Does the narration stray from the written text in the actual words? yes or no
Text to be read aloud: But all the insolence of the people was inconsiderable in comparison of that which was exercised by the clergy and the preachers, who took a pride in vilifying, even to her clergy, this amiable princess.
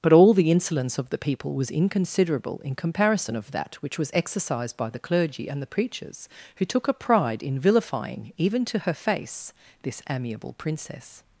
yes